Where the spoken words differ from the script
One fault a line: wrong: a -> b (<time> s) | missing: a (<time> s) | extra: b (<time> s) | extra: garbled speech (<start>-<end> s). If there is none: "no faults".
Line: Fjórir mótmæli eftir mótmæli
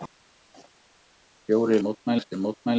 no faults